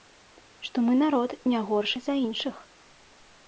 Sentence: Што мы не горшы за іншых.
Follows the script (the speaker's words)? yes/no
no